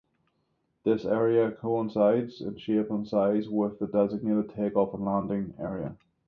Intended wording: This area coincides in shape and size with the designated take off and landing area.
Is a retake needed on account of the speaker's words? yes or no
no